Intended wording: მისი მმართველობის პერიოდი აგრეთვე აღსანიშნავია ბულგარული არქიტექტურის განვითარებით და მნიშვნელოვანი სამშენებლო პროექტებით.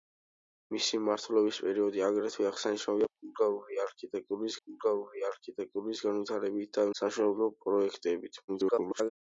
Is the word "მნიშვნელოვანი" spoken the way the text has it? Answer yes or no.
no